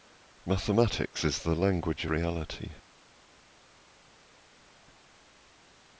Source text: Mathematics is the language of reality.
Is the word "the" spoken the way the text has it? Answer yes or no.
yes